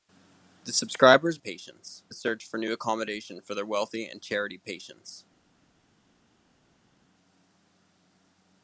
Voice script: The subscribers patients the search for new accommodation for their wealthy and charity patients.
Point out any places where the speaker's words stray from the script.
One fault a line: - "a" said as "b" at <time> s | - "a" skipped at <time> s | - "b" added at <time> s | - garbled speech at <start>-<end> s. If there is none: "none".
none